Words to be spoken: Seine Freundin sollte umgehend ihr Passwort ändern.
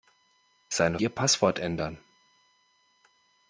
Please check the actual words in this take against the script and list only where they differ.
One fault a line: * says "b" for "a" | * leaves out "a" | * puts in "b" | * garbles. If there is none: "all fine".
* leaves out "Freundin sollte umgehend"